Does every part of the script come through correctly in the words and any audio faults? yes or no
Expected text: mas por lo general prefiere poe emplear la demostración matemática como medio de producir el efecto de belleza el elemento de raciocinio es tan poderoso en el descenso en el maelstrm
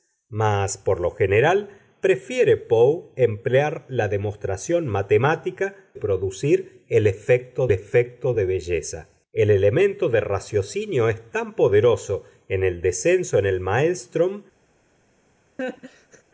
no